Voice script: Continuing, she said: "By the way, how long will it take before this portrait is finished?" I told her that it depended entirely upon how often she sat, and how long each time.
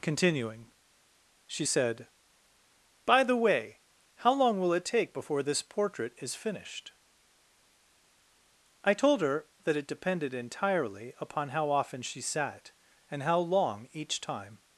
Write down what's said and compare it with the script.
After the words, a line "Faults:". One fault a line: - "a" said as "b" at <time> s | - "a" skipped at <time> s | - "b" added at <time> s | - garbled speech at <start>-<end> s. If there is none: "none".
Continuing, she said: "By the way, how long will it take before this portrait is finished?" I told her that it depended entirely upon how often she sat, and how long each time.
Faults:
none